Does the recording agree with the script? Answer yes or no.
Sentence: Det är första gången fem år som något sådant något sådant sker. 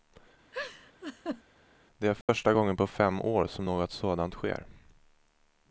no